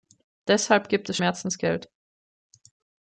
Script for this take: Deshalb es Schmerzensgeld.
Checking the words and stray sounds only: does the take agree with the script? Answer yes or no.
no